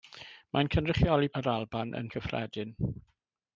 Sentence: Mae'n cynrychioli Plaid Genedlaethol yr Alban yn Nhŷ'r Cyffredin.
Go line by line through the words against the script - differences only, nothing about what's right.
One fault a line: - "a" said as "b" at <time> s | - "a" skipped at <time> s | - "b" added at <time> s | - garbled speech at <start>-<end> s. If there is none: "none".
- "Plaid Genedlaethol" skipped at 1.3 s
- "Nhŷ'r" skipped at 2.1 s